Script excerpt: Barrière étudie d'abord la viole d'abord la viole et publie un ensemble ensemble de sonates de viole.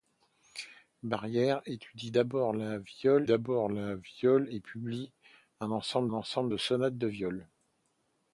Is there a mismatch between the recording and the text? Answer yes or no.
no